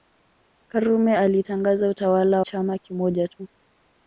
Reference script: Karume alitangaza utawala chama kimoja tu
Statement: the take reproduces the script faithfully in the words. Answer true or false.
true